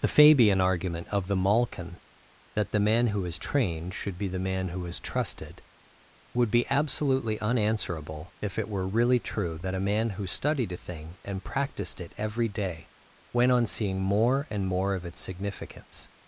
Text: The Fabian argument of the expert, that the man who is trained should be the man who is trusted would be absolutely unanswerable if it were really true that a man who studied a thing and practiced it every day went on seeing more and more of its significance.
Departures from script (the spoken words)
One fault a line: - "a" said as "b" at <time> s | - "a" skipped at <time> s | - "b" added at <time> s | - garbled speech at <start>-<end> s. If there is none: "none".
- "expert" said as "malkin" at 1.4 s